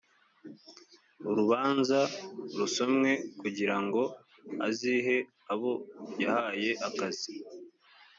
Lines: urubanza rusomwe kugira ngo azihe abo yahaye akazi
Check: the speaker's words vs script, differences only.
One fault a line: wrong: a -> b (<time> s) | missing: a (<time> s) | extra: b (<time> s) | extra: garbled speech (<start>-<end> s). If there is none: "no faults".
no faults